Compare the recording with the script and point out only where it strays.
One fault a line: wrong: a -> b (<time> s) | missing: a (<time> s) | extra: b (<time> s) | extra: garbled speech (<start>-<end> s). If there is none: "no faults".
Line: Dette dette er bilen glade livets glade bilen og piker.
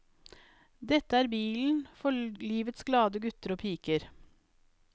missing: dette (1.2 s)
wrong: glade -> for (2.0 s)
wrong: bilen -> gutter (3.2 s)